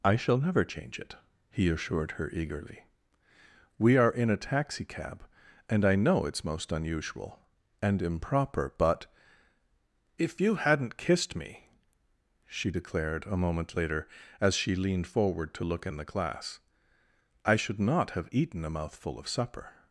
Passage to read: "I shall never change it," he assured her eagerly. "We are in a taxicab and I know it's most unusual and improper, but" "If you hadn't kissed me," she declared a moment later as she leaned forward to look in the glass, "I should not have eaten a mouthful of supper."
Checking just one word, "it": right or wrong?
right